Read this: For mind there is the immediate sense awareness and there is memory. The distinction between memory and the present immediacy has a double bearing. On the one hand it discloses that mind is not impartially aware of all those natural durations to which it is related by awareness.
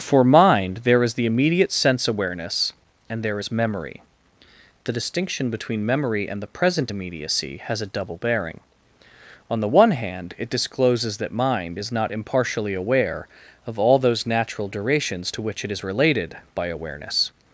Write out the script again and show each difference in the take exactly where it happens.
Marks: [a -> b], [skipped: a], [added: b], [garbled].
For mind there is the immediate sense awareness and there is memory. The distinction between memory and the present immediacy has a double bearing. On the one hand it discloses that mind is not impartially aware of all those natural durations to which it is related by awareness.